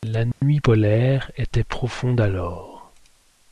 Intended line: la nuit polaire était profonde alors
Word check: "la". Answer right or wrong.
right